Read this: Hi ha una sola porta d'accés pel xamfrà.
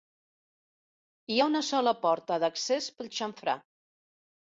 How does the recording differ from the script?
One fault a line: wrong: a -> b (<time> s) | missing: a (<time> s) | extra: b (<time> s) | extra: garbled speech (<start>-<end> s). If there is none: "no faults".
no faults